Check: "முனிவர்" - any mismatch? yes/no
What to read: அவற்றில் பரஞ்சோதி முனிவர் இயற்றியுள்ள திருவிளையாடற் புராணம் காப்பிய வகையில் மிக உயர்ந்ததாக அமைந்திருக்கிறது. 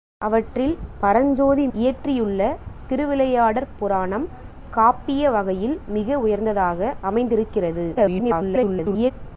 yes